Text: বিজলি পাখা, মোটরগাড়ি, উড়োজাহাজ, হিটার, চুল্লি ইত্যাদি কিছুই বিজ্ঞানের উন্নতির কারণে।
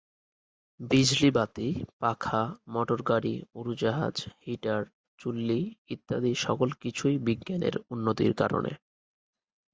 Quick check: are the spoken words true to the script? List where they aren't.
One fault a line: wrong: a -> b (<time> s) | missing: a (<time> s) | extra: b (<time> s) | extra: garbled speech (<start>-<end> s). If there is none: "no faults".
extra: বাতি (1.3 s)
extra: সকল (6.4 s)